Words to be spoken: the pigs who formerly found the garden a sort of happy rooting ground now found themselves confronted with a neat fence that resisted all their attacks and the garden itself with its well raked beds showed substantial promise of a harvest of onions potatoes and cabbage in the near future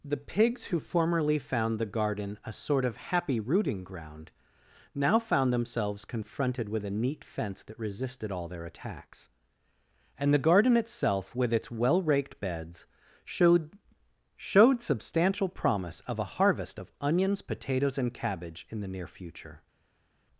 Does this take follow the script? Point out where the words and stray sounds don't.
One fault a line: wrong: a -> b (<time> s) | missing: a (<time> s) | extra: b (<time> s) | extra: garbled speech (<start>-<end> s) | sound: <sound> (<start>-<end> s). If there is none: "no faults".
extra: showed (14.3 s)